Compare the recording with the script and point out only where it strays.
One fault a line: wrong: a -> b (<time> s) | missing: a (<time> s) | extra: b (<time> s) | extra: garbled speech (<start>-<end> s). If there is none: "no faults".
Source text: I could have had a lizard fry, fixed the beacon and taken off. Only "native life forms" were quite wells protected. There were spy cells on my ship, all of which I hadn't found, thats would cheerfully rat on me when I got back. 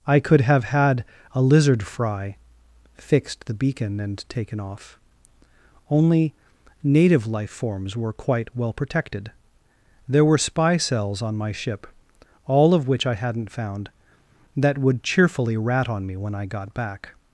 wrong: wells -> well (8.6 s)
wrong: thats -> that (14.6 s)